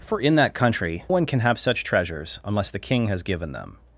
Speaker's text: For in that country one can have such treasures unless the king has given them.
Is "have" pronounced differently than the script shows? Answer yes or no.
no